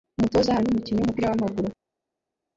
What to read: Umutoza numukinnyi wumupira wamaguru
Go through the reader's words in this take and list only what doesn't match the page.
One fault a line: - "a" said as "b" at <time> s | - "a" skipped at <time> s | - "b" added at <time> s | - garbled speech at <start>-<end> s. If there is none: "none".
none